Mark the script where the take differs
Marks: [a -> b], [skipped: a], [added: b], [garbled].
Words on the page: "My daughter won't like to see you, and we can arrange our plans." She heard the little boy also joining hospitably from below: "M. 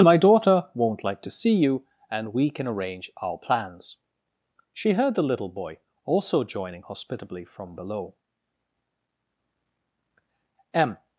"My daughter won't like to see you, and we can arrange our plans." She heard the little boy also joining hospitably from below: "M.